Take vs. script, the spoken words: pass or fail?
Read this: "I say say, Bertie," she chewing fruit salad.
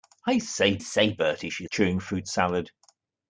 pass